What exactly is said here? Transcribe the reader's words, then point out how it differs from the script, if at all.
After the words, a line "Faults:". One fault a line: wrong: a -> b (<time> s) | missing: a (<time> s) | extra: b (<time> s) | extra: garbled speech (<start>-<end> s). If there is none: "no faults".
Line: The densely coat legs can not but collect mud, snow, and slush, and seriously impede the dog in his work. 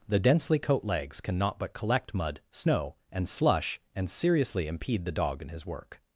The densely coat legs can not but collect mud, snow, and slush, and seriously impede the dog in his work.
Faults:
no faults